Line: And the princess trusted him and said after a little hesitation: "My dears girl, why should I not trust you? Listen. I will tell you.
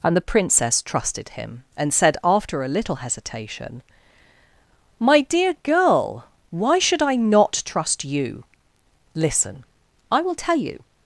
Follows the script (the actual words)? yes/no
no